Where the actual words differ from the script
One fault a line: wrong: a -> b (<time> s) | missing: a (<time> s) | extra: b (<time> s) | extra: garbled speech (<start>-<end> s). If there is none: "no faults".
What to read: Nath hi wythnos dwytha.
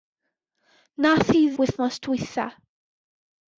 no faults